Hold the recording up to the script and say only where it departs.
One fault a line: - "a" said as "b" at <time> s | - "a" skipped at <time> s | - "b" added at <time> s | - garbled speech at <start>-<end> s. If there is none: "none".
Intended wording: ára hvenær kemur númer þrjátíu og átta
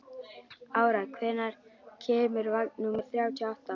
- "vagn" added at 2.5 s